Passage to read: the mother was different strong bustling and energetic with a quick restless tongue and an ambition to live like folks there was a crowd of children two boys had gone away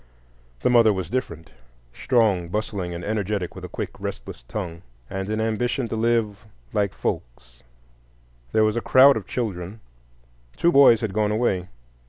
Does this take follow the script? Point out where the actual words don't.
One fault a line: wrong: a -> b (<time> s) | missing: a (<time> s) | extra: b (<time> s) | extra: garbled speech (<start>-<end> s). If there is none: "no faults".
no faults